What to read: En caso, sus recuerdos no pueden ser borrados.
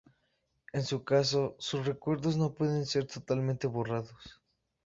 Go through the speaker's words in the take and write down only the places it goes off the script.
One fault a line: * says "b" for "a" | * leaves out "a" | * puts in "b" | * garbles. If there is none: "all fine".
* puts in "su"
* puts in "totalmente"